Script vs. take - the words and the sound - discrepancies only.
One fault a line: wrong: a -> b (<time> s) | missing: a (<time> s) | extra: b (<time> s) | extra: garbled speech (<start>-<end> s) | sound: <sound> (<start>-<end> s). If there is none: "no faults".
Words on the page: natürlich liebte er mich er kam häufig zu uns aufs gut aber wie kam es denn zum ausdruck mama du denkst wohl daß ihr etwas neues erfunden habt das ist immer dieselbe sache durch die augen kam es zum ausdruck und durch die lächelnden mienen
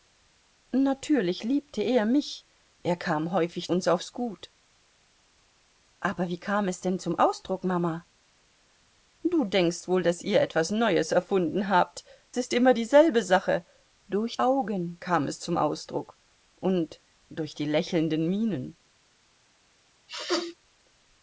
missing: zu (3.7 s)
missing: das (12.0 s)
missing: die (14.4 s)
sound: sneeze (20.1-20.5 s)